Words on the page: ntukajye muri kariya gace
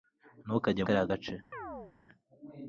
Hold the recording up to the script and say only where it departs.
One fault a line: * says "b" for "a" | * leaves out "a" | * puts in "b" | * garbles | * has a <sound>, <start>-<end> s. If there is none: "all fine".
* leaves out "muri"
* has a chirp, 1.5-1.9 s